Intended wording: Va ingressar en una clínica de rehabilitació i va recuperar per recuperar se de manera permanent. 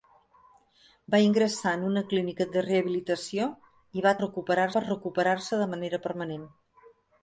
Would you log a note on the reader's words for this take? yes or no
no